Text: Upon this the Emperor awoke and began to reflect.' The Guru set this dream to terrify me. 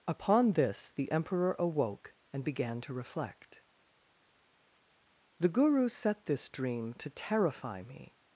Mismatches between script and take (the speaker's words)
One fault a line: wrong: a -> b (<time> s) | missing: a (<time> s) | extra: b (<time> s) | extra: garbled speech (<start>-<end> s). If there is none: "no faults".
no faults